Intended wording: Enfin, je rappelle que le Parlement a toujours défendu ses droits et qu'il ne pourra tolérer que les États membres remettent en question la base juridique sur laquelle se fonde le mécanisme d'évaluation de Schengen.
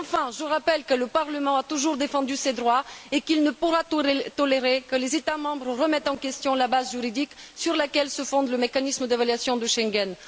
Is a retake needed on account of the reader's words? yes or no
no